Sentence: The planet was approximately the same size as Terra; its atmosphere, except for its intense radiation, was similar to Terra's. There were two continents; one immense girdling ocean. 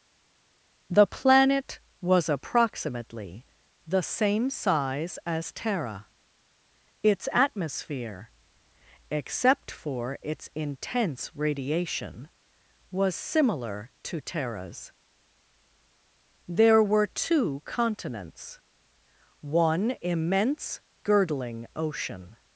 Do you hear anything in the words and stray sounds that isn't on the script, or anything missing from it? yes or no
no